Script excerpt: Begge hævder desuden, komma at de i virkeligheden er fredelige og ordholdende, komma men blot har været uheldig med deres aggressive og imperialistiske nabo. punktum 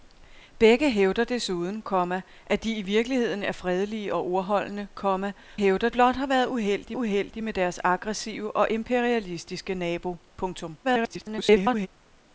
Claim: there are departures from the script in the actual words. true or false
true